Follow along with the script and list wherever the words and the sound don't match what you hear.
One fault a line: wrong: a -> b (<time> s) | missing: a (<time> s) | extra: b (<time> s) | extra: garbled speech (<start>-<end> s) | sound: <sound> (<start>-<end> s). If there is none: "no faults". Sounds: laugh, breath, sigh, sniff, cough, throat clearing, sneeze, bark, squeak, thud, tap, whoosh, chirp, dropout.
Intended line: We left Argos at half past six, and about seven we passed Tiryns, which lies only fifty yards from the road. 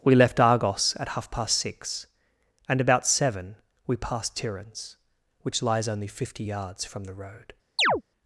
sound: chirp (7.8-8.0 s)